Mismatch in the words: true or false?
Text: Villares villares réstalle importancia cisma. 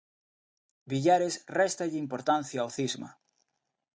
true